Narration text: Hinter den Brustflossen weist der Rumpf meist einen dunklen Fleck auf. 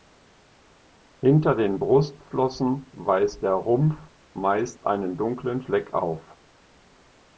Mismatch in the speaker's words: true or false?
false